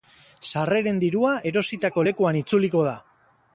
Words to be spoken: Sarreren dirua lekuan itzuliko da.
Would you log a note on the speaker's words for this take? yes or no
yes